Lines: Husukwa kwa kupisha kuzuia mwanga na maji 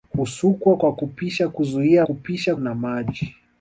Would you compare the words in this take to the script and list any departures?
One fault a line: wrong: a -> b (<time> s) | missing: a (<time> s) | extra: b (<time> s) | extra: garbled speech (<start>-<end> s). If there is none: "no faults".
wrong: mwanga -> kupisha (2.0 s)